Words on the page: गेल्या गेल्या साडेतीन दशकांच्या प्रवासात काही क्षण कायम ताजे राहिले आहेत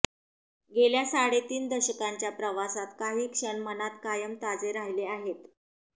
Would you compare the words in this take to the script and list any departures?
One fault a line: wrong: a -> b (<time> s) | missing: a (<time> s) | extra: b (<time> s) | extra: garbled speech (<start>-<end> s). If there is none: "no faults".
missing: गेल्या (1.0 s)
extra: मनात (3.6 s)